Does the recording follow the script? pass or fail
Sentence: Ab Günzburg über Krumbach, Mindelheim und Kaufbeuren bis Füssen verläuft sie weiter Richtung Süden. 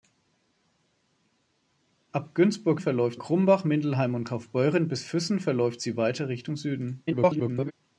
fail